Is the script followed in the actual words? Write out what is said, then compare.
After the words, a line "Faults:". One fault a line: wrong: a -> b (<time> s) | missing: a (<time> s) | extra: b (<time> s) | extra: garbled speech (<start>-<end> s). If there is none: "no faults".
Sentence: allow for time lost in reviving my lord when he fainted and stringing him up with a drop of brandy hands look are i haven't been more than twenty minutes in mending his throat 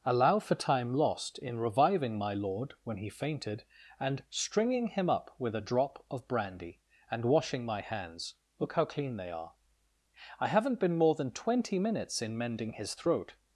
allow for time lost in reviving my lord when he fainted and stringing him up with a drop of brandy and washing my hands look how clean they are i haven't been more than twenty minutes in mending his throat
Faults:
extra: and washing my (7.1 s)
extra: how clean they (8.7 s)